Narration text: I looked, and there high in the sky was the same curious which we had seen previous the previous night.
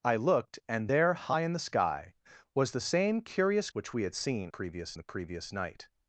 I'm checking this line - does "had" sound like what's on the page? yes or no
yes